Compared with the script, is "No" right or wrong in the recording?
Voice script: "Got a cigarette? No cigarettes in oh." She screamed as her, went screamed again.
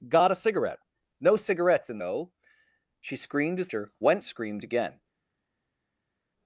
right